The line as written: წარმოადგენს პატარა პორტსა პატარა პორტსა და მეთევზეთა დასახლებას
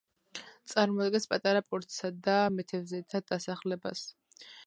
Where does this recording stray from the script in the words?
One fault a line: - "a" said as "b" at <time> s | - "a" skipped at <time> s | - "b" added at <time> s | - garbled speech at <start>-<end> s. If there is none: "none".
- "პატარა პორტსა" skipped at 2.1 s